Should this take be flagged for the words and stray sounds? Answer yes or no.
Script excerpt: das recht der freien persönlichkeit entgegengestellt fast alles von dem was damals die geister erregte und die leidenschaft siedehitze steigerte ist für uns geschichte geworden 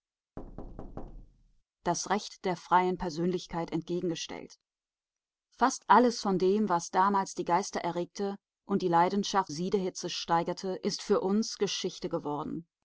yes